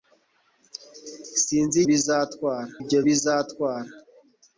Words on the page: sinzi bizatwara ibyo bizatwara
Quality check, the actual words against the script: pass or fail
pass